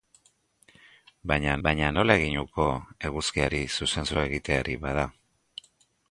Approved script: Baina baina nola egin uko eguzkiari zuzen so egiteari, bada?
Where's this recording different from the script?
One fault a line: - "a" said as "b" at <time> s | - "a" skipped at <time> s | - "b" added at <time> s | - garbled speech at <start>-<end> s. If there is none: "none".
none